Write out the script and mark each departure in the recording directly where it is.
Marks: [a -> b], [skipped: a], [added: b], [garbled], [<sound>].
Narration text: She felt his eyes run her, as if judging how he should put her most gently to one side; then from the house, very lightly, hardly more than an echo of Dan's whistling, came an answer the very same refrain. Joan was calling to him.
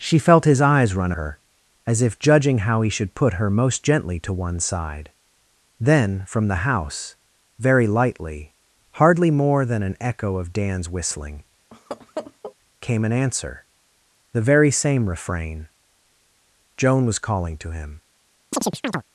She felt his eyes run her, as if judging how he should put her most gently to one side; then from the house, very lightly, hardly more than an echo of Dan's whistling, [laugh] came an answer the very same refrain. Joan was calling to him. [chirp]